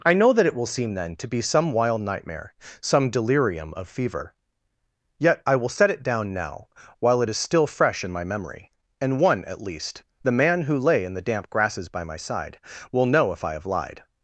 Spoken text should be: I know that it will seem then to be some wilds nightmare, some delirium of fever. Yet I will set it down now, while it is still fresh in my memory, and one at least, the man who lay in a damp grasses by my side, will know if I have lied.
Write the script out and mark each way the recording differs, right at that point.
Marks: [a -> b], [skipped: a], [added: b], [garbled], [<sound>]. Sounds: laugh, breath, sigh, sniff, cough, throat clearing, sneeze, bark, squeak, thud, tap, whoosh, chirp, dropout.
I know that it will seem then to be some [wilds -> wild] nightmare, some delirium of fever. Yet I will set it down now, while it is still fresh in my memory, and one at least, the man who lay in [a -> the] damp grasses by my side, will know if I have lied.